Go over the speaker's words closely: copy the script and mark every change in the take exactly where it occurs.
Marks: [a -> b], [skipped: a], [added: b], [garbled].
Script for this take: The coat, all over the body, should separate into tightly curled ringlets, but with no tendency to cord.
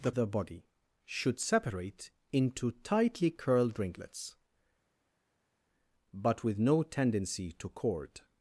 The [skipped: coat, all over] the body, should separate into tightly curled ringlets, but with no tendency to cord.